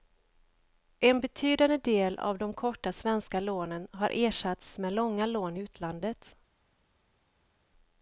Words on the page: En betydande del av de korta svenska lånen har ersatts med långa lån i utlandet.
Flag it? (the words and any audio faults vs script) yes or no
no